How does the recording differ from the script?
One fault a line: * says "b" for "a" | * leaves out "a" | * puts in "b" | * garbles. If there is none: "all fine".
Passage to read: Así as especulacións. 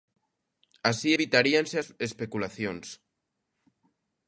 * puts in "evitaríanse"